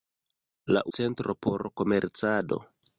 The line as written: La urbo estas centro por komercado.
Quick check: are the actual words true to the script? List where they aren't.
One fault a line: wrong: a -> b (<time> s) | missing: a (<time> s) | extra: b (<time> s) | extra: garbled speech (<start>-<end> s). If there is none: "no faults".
missing: urbo estas (0.8 s)